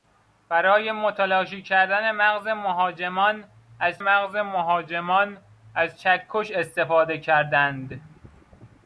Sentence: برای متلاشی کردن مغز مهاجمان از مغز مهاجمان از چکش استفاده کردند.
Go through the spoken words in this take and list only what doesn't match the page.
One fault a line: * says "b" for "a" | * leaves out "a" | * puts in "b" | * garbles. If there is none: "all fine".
all fine